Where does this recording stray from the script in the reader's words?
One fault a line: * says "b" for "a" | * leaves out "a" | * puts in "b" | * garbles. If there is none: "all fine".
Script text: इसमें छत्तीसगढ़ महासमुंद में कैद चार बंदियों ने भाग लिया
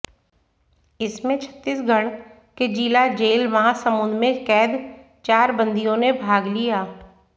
* puts in "के जिला जेल"